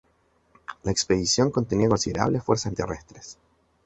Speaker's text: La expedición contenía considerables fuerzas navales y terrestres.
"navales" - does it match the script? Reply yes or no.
no